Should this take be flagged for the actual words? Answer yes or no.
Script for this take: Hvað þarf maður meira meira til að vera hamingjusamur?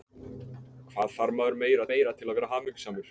no